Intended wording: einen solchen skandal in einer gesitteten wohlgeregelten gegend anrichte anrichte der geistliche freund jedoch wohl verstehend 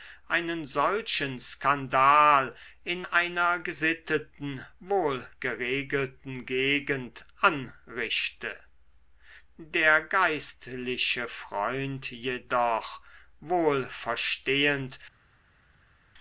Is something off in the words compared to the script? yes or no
yes